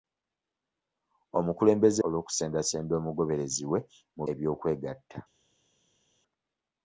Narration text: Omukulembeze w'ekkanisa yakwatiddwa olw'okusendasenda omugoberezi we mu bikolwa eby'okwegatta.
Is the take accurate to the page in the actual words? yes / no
no